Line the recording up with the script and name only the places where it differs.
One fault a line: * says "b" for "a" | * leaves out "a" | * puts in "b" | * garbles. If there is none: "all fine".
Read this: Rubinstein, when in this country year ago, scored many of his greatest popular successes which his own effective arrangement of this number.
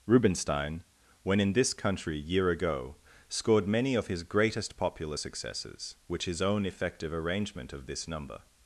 all fine